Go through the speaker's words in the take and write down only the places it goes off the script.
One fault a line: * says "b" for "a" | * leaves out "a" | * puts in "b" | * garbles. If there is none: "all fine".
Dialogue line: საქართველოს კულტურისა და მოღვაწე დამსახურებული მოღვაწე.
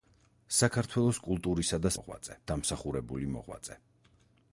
all fine